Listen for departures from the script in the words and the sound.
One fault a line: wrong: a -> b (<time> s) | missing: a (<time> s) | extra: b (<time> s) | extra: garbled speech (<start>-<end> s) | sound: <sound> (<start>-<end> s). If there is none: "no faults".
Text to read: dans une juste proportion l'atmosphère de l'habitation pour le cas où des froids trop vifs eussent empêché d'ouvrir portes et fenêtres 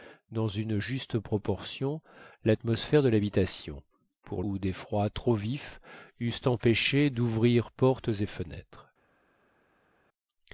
missing: le cas (4.4 s)